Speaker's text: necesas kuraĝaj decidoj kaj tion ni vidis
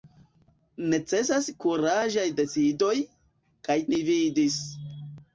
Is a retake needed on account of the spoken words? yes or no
yes